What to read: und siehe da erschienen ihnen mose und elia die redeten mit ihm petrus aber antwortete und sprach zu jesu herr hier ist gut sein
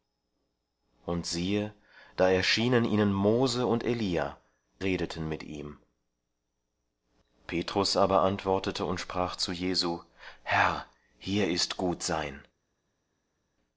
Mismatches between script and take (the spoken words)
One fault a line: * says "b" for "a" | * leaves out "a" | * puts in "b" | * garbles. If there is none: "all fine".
* leaves out "die"